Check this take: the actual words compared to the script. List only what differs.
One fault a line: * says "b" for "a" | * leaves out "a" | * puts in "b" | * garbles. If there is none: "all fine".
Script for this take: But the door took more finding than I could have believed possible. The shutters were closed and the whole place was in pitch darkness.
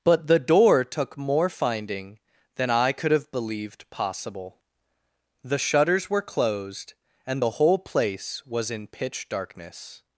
all fine